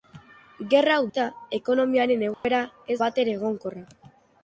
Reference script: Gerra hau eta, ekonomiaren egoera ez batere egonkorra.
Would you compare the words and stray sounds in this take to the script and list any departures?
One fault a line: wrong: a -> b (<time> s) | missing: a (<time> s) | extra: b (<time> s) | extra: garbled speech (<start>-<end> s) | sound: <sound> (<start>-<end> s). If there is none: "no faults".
sound: dropout (2.3-2.4 s)